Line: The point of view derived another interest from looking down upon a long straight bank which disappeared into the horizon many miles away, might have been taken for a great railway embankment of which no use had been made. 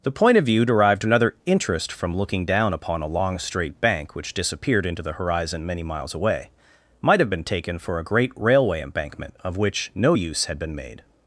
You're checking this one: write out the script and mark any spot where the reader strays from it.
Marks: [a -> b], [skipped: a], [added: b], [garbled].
The point of view derived another interest from looking down upon a long straight bank which disappeared into the horizon many miles away, might have been taken for a great railway embankment of which no use had been made.